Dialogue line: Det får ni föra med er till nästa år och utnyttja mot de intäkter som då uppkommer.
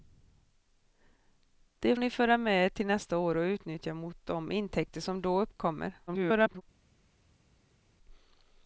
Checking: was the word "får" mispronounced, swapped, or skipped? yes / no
yes